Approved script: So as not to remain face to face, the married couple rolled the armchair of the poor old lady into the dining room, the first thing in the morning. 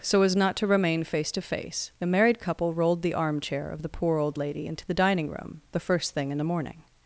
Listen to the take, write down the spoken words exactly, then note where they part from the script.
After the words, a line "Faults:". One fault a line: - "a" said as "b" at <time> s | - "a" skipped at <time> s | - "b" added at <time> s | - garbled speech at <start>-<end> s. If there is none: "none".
So as not to remain face to face, the married couple rolled the armchair of the poor old lady into the dining room, the first thing in the morning.
Faults:
none